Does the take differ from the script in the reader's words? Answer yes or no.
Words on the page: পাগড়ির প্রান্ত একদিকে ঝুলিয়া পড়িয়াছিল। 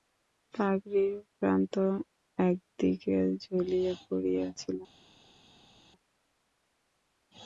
no